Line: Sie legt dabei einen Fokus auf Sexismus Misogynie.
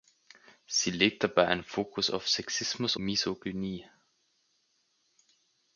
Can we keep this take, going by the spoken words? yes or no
yes